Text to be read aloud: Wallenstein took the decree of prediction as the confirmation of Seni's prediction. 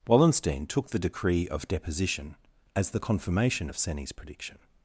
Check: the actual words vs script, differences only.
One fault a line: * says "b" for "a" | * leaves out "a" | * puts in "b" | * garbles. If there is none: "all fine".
* says "deposition" for "prediction"